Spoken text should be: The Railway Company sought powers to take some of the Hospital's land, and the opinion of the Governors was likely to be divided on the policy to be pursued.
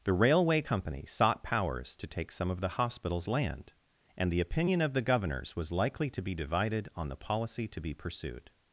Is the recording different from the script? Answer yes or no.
no